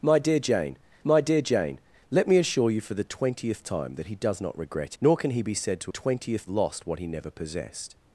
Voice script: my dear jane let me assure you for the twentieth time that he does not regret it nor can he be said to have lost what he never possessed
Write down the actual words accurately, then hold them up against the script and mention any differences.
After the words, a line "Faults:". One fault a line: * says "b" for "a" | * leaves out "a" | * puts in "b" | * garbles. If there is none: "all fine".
my dear jane my dear jane let me assure you for the twentieth time that he does not regret nor can he be said to twentieth lost what he never possessed
Faults:
* puts in "my dear jane"
* leaves out "it"
* says "twentieth" for "have"